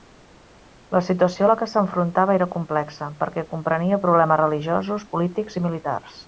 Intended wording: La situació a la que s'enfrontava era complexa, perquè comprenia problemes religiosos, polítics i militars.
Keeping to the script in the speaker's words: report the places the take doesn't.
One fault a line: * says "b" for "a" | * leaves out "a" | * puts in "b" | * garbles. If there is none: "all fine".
all fine